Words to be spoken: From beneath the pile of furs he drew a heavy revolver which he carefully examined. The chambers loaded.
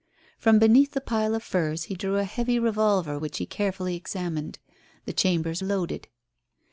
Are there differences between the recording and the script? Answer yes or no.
no